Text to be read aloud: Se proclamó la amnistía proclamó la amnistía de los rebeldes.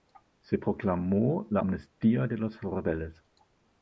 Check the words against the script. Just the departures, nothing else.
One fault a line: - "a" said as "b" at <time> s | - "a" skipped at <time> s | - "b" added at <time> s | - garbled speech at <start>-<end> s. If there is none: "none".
- "proclamó la amnistía" skipped at 2.3 s